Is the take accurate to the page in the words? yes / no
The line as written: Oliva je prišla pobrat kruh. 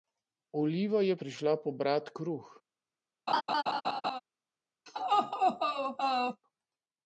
yes